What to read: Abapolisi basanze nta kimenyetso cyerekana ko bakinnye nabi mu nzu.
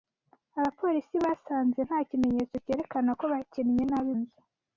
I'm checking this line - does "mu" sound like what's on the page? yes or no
no